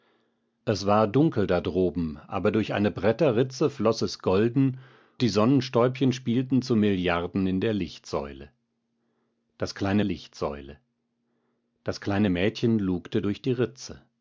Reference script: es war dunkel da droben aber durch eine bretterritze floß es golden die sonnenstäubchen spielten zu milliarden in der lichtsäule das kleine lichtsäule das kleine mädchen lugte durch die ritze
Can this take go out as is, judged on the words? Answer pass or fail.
pass